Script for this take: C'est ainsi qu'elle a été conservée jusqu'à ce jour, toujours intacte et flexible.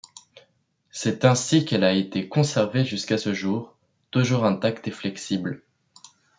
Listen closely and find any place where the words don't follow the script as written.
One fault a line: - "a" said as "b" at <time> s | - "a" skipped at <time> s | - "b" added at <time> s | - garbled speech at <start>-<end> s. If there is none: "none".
none